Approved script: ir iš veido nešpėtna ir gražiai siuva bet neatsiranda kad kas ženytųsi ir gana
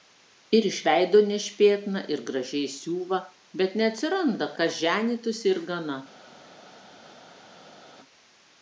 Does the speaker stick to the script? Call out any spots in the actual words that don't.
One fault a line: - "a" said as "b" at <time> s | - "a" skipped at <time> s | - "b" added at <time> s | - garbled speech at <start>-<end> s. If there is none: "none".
- "kad" skipped at 4.5 s